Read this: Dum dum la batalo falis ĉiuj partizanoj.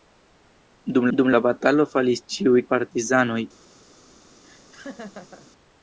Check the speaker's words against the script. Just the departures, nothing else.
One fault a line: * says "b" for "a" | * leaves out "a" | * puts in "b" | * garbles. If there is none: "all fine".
all fine